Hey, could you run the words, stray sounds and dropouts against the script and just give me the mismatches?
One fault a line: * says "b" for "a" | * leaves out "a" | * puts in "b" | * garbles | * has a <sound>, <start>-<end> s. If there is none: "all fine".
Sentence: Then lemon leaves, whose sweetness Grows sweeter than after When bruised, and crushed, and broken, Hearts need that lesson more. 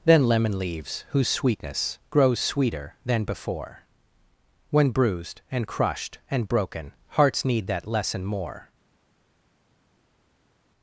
* says "before" for "after"